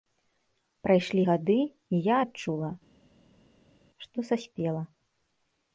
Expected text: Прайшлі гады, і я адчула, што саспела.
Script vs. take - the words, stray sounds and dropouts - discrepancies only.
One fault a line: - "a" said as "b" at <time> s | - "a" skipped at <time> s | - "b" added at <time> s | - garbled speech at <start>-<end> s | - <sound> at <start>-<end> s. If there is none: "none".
none